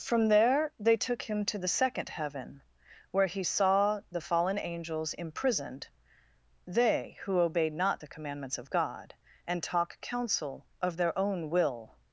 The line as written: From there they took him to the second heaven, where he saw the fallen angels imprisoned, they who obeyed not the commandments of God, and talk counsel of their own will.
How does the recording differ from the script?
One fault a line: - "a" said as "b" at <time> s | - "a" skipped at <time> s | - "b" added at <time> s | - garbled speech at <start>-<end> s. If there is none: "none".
none